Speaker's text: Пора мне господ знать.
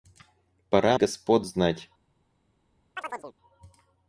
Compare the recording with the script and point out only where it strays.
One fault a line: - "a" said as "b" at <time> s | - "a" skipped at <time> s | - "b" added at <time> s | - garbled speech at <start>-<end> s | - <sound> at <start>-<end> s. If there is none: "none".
- "мне" skipped at 1.0 s
- chirp at 3.0-3.3 s